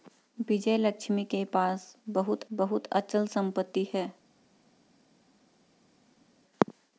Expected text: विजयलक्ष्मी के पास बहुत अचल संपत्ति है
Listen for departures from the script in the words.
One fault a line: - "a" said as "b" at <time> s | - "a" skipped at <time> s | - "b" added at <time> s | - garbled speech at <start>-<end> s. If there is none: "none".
- "बहुत" added at 2.5 s